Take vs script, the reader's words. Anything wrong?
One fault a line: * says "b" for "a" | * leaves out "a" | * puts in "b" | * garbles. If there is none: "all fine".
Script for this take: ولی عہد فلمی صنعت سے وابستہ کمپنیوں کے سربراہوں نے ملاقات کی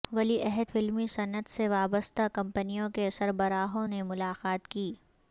all fine